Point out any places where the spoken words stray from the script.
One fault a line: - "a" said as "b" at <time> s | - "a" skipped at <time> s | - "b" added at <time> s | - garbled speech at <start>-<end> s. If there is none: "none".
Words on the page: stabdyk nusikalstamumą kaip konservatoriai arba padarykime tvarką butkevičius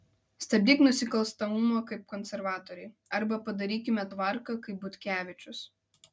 - "kaip" added at 4.7 s